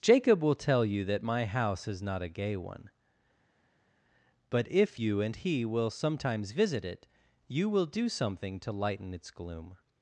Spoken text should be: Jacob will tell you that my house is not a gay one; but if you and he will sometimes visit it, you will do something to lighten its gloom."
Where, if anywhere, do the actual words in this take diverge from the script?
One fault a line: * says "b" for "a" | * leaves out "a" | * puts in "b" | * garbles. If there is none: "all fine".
all fine